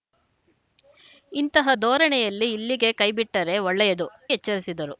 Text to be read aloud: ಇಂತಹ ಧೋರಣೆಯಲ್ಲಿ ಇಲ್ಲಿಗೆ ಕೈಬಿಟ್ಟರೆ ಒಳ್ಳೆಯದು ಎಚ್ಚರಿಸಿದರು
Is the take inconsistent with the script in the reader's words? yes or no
no